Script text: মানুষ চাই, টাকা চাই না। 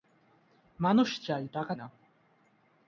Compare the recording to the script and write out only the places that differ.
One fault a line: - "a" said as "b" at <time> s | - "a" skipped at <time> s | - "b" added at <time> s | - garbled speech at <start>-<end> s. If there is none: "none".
- "চাই" skipped at 1.7 s